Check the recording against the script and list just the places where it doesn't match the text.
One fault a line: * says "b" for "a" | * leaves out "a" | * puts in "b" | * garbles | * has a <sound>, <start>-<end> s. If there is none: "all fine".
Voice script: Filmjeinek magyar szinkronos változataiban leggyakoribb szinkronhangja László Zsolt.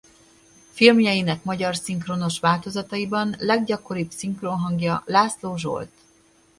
all fine